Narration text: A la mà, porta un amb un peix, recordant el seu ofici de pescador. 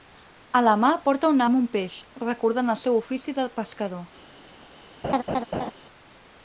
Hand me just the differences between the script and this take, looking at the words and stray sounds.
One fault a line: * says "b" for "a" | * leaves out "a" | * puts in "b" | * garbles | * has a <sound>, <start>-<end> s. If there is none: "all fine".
* has a laugh, 5.0-5.7 s